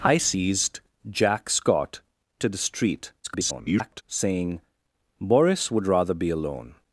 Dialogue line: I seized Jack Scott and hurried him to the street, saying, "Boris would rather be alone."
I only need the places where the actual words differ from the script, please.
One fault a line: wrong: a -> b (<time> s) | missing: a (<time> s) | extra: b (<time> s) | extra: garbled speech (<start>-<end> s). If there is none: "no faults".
missing: and hurried him (2.0 s)
extra: garbled speech (3.2-4.0 s)